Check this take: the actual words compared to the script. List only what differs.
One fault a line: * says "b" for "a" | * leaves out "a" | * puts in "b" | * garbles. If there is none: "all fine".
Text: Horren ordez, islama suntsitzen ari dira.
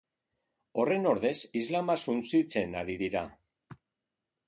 all fine